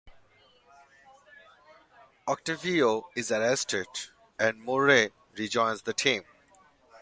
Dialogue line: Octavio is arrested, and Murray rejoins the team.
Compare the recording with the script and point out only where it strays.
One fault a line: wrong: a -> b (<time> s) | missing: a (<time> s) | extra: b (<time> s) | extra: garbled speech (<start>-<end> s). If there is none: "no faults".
no faults